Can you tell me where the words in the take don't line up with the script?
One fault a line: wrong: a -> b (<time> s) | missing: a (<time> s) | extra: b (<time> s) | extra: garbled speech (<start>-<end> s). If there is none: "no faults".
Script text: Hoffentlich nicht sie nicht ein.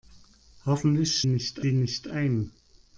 no faults